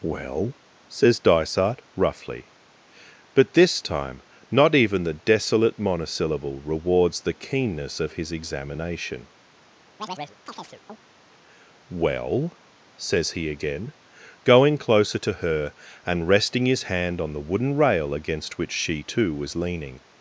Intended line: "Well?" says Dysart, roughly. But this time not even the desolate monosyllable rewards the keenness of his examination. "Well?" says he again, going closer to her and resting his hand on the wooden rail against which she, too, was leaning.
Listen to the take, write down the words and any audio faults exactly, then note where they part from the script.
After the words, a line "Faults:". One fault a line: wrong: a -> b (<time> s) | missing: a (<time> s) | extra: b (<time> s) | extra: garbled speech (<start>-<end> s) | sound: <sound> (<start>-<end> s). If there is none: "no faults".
"Well?" says Dysart, roughly. But this time not even the desolate monosyllable rewards the keenness of his examination. "Well?" says he again, going closer to her and resting his hand on the wooden rail against which she, too, was leaning.
Faults:
sound: chirp (10.0-11.0 s)